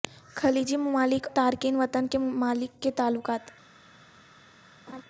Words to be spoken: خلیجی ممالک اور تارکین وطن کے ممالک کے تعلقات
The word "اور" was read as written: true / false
false